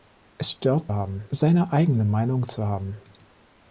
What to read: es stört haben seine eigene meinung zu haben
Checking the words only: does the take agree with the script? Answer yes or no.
yes